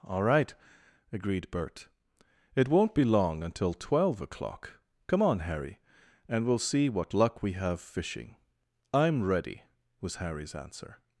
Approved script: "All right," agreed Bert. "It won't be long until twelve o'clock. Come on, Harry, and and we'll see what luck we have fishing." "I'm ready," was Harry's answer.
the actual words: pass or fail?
fail